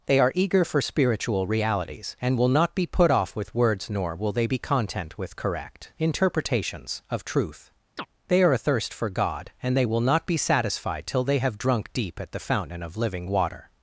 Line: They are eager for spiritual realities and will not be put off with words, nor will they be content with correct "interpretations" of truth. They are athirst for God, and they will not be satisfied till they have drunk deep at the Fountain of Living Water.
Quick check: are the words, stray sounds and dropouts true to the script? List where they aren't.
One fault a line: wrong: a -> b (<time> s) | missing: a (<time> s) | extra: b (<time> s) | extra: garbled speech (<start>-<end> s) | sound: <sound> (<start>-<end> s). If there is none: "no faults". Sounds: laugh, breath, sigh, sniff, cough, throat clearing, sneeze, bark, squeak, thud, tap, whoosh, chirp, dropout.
sound: chirp (8.0-8.1 s)